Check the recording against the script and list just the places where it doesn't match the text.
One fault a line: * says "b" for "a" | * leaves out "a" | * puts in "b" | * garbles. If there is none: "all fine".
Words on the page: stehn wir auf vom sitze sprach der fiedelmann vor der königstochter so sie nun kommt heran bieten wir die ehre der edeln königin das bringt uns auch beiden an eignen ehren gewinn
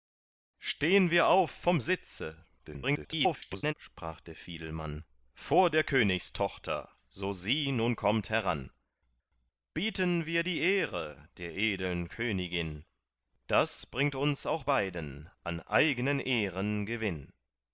* garbles